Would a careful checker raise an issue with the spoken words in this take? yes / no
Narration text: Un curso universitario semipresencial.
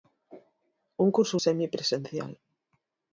yes